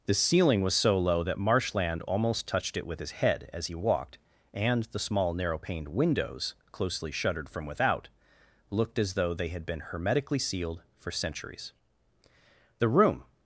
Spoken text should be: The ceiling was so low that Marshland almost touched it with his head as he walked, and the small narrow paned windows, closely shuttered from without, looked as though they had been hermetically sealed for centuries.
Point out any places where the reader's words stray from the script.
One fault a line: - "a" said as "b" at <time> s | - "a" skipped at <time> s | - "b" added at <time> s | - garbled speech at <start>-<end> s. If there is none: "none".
- "The room" added at 12.8 s